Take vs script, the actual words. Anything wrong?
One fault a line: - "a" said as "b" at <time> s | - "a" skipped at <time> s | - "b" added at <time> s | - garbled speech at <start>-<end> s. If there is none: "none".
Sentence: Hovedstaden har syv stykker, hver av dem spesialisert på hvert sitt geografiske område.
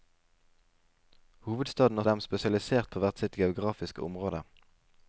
- "syv stykker hver" skipped at 2.0 s